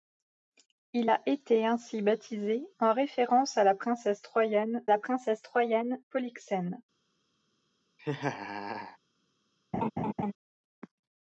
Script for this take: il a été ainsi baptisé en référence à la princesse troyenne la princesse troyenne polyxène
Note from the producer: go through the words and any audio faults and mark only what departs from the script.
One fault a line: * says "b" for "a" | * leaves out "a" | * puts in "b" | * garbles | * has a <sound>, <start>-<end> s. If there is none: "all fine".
* has a laugh, 8.0-9.0 s
* has a laugh, 9.7-10.3 s